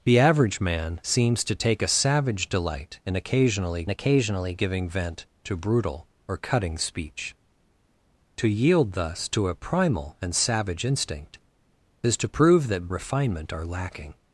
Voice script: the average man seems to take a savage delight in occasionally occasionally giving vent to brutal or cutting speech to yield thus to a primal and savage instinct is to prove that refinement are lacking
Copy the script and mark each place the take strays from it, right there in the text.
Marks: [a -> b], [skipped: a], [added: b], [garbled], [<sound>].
the average man seems to take a savage delight in occasionally occasionally giving vent to brutal or cutting speech to yield thus to a primal and savage instinct is to prove that refinement are lacking